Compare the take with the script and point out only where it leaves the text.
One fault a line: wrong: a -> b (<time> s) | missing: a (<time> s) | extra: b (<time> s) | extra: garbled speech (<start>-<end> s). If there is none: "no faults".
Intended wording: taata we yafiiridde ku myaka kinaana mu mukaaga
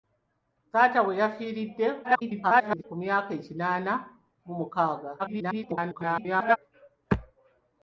extra: garbled speech (2.0-2.8 s)
extra: garbled speech (5.2-6.6 s)